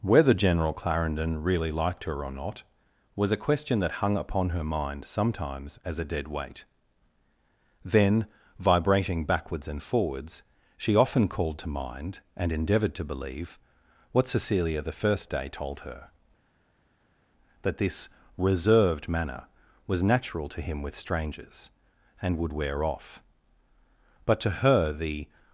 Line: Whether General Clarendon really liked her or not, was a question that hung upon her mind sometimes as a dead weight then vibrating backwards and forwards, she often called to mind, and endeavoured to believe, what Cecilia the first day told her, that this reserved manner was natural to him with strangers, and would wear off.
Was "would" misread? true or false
false